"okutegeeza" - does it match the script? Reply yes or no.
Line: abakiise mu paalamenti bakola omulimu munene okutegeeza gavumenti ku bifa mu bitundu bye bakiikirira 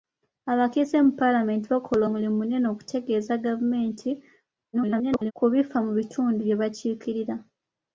yes